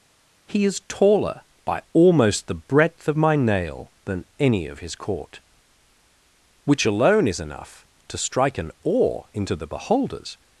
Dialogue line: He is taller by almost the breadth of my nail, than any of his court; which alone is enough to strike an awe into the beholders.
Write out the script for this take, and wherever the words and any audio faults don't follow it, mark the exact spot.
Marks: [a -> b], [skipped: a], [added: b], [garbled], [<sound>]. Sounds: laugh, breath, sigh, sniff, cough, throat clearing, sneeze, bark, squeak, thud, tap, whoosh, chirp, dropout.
He is taller by almost the breadth of my nail, than any of his court; which alone is enough to strike an awe into the beholders.